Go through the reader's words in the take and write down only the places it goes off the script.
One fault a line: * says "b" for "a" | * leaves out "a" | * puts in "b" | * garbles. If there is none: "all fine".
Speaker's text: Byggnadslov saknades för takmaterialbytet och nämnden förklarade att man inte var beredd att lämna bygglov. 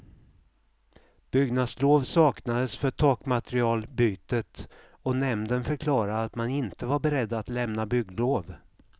all fine